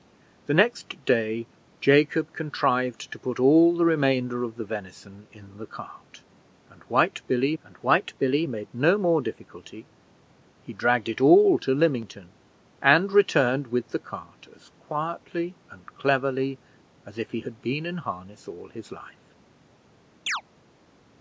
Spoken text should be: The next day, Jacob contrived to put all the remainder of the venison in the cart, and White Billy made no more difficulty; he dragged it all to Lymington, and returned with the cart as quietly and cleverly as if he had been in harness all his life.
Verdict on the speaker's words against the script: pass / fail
fail